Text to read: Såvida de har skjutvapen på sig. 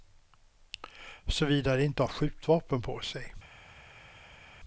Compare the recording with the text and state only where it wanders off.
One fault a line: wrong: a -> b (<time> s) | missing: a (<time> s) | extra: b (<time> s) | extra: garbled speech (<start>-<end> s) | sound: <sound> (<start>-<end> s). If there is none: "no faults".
extra: inte (1.8 s)